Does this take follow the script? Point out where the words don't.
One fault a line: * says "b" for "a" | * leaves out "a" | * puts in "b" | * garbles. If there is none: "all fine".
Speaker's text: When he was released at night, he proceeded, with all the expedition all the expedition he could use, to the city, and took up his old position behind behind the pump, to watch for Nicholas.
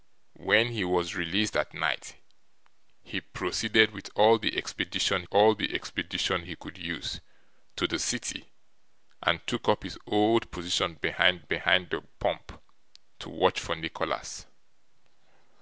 all fine